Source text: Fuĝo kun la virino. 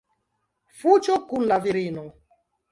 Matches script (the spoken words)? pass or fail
pass